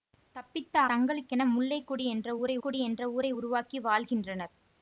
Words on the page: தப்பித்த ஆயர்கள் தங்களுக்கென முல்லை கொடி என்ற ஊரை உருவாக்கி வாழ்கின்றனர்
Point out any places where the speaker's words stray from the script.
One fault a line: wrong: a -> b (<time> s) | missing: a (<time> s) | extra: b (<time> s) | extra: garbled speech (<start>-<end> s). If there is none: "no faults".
missing: ஆயர்கள் (0.8 s)
extra: கொடி என்ற ஊரை (2.6 s)